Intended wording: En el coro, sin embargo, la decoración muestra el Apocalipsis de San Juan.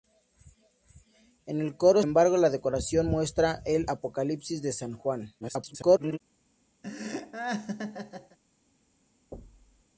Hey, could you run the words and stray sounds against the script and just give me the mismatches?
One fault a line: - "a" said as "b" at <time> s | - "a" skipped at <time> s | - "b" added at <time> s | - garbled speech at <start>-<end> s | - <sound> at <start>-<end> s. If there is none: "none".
- "sin" skipped at 2.0 s
- garbled speech at 5.4-6.2 s
- laugh at 6.8-8.4 s
- thud at 9.3-9.8 s